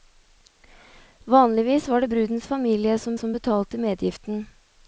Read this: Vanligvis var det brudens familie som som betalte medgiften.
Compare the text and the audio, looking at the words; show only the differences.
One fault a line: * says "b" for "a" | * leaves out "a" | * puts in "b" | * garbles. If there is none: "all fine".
all fine